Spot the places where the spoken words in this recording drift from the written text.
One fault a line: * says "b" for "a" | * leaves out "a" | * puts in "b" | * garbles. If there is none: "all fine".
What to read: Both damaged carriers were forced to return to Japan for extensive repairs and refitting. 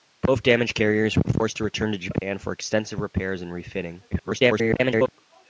* garbles